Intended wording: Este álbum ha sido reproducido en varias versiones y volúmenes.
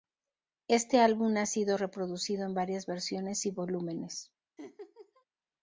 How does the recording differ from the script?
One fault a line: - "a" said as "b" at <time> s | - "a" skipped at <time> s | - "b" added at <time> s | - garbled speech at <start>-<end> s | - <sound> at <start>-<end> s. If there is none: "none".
- laugh at 4.6-5.2 s